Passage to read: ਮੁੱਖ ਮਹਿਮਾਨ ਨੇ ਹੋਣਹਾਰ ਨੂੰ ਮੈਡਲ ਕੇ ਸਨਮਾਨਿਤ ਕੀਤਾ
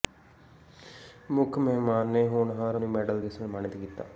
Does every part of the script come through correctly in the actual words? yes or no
yes